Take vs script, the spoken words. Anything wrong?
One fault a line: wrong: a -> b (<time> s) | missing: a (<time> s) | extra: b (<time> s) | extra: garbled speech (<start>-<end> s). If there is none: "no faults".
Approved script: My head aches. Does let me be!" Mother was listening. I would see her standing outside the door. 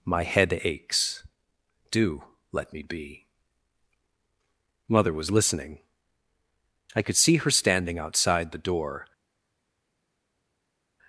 wrong: Does -> Do (1.9 s)
wrong: would -> could (7.0 s)